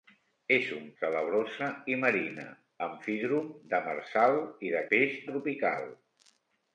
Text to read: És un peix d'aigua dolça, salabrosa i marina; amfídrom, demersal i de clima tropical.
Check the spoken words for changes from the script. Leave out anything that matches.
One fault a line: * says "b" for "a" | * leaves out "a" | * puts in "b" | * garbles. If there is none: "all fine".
* leaves out "peix d'aigua dolça"
* says "peix" for "clima"